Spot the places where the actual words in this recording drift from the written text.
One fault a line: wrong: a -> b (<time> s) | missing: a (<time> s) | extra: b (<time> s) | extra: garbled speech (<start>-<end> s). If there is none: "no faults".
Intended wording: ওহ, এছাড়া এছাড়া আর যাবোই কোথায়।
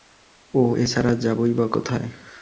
missing: এছাড়া (1.1 s)
extra: বা (1.5 s)